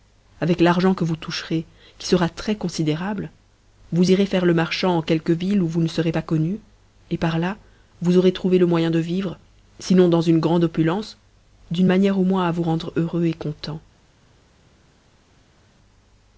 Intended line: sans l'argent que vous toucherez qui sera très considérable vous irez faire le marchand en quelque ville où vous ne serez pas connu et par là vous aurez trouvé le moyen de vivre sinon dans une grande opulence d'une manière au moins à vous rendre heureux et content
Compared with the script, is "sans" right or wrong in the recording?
wrong